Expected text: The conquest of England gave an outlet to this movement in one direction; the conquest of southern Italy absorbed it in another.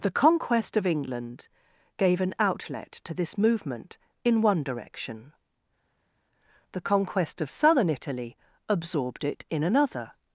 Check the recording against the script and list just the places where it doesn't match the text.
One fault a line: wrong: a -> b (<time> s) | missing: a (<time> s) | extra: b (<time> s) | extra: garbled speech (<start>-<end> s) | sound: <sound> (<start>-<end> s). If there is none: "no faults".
no faults